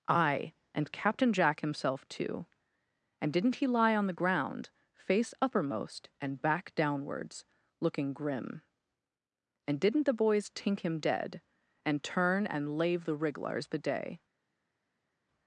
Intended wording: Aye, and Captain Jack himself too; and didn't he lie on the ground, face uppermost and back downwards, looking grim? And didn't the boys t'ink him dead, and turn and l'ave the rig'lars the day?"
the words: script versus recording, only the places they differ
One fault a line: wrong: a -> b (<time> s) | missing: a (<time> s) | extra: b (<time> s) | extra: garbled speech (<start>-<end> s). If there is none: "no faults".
no faults